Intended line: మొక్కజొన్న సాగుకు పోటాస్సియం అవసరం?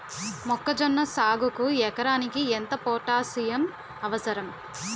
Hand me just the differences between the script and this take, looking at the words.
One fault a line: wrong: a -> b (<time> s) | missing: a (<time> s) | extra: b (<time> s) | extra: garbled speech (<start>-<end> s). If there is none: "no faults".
extra: ఎకరానికి ఎంత (1.9 s)